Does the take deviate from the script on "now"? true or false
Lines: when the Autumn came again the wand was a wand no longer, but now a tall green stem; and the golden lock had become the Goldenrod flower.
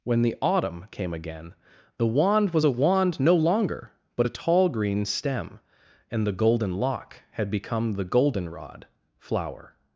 true